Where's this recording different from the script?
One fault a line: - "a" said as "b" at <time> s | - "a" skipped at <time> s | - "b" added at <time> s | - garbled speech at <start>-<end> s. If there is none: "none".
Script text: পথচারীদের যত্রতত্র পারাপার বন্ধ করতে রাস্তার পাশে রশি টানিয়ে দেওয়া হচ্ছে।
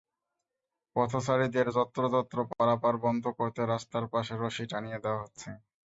none